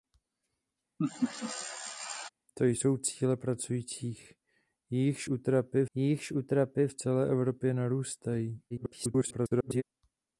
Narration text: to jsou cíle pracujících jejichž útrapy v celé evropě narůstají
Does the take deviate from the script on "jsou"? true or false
false